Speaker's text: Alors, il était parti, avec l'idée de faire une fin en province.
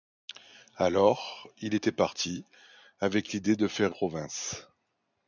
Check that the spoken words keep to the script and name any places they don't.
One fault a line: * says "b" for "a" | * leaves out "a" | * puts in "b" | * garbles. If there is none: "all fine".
* leaves out "une fin en"